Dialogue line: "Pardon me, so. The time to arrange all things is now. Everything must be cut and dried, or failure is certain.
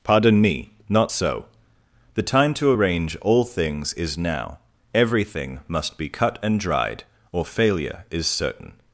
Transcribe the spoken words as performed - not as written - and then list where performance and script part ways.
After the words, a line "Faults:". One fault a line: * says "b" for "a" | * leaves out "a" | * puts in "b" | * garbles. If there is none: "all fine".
"Pardon me, not so. The time to arrange all things is now. Everything must be cut and dried, or failure is certain.
Faults:
* puts in "not"